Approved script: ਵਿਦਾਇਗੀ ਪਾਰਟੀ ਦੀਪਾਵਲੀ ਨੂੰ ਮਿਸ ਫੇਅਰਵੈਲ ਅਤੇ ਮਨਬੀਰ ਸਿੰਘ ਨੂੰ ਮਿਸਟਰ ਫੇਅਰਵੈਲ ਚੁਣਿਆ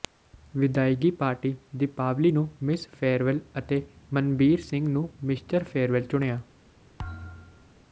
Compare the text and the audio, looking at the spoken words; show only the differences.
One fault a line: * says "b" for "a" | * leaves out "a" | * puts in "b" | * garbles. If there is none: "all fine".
all fine